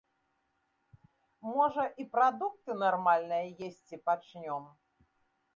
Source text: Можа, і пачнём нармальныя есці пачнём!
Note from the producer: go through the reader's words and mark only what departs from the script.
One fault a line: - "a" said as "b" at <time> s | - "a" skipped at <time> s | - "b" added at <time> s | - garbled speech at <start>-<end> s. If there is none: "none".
- "пачнём" said as "прадукты" at 2.1 s